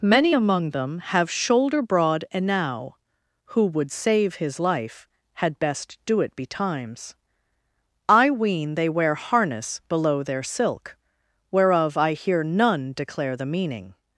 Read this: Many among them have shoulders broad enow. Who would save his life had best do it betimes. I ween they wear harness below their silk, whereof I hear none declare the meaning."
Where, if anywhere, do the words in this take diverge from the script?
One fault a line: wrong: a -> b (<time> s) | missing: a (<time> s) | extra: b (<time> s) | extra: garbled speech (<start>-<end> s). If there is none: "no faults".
wrong: shoulders -> shoulder (1.3 s)